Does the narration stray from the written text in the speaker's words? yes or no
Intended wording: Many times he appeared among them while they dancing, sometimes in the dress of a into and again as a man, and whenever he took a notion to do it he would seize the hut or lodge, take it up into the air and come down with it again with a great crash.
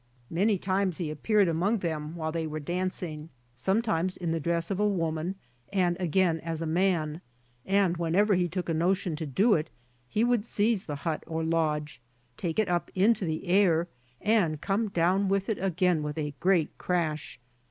yes